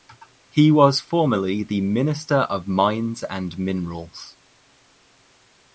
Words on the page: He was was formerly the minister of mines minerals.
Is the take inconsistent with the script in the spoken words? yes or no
yes